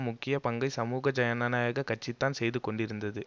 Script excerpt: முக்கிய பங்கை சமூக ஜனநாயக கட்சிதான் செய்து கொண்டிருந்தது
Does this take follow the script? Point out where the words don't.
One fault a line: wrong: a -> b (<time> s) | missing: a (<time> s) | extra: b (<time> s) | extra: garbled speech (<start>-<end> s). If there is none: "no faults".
no faults